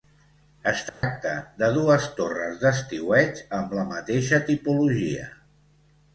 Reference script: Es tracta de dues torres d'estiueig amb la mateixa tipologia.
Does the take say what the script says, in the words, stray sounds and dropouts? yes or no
no